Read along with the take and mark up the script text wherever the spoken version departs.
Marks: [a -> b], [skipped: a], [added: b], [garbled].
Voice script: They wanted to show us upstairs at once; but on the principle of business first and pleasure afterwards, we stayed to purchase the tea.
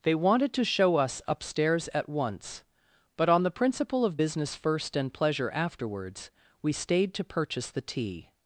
They wanted to show us upstairs at once; but on the principle of business first and pleasure afterwards, we stayed to purchase the tea.